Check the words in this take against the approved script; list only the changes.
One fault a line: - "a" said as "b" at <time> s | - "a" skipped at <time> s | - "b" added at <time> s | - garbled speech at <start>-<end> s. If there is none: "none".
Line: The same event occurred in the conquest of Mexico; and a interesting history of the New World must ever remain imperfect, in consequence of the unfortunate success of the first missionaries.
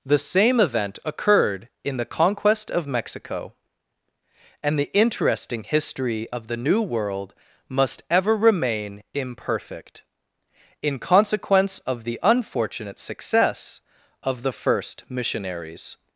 - "a" said as "the" at 4.8 s